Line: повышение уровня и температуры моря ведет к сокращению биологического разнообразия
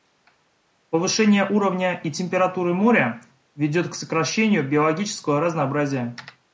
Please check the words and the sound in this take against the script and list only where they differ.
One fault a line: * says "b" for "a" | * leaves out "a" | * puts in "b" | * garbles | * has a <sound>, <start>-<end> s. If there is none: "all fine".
all fine